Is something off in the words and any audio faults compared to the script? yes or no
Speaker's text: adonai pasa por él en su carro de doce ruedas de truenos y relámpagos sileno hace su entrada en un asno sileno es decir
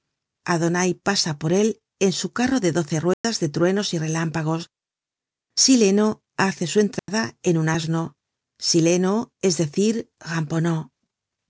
yes